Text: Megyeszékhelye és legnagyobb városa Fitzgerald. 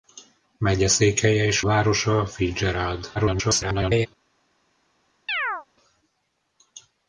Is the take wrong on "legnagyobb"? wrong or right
wrong